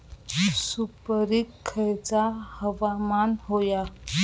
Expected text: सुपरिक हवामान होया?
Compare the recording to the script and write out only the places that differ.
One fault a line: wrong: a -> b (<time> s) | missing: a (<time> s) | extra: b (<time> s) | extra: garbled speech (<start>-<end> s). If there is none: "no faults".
extra: खयचा (1.7 s)